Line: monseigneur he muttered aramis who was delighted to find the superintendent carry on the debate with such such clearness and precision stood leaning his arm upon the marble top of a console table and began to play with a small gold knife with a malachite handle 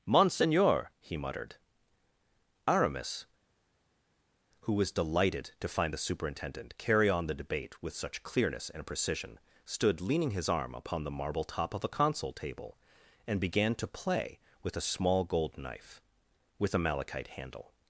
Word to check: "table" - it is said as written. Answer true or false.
true